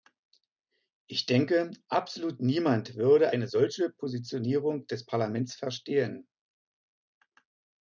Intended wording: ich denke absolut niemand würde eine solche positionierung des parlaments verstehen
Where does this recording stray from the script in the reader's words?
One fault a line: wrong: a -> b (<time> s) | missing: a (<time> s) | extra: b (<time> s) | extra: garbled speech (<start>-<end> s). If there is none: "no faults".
no faults